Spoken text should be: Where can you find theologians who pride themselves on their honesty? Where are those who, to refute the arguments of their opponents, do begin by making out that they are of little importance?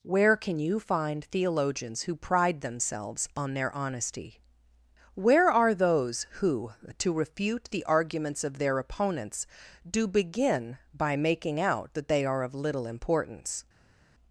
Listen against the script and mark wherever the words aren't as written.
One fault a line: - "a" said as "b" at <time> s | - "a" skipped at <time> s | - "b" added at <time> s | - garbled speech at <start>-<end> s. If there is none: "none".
none